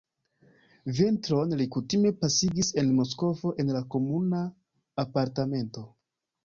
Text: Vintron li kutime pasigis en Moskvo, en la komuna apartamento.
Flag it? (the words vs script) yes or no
no